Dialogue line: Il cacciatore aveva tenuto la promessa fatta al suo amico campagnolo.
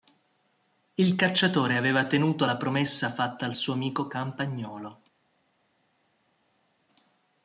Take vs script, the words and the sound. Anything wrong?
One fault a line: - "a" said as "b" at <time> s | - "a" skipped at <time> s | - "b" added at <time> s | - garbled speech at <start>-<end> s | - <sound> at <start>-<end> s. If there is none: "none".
none